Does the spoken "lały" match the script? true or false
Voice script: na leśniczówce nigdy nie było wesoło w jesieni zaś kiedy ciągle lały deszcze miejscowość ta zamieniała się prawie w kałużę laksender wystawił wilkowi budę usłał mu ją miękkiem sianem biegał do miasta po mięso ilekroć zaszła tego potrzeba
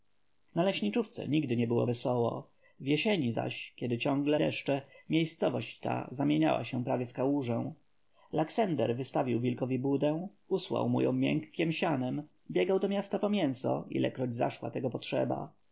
false